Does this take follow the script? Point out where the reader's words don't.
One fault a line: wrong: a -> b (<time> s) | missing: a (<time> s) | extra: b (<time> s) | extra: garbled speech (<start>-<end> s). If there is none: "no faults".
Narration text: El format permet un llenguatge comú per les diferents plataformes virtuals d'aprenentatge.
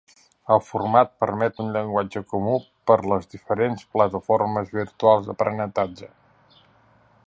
no faults